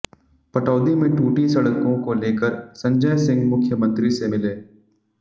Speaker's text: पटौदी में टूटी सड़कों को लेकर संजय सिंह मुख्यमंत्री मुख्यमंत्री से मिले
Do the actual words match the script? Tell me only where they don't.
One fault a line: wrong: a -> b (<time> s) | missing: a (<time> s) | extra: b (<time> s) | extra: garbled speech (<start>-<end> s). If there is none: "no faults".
missing: मुख्यमंत्री (4.1 s)